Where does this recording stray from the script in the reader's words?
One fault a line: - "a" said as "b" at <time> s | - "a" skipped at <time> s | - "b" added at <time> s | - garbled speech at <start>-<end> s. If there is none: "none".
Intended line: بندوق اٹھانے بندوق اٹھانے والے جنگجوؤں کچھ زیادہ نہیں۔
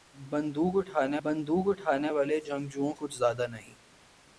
none